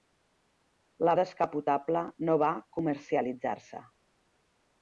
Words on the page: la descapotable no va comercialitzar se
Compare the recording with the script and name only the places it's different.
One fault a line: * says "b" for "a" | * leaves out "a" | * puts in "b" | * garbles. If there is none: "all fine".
all fine